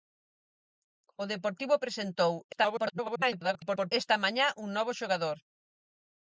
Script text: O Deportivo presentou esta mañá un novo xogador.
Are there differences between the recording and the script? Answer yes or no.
yes